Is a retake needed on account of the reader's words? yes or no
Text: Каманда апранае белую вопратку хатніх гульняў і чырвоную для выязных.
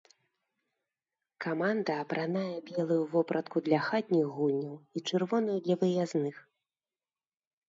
yes